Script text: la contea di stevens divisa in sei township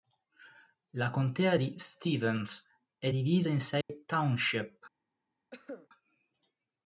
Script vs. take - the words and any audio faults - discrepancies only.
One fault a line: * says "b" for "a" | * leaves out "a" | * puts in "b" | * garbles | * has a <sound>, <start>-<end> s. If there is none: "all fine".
* puts in "è"
* has a dropout, 3.8-3.9 s
* has a cough, 5.5-5.9 s